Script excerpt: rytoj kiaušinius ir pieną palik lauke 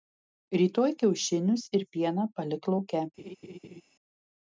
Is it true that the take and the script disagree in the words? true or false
false